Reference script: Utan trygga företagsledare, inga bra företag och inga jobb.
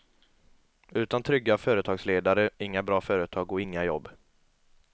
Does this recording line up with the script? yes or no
yes